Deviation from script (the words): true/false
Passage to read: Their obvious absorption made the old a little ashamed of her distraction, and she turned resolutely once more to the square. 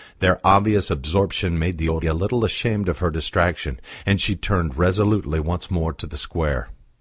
false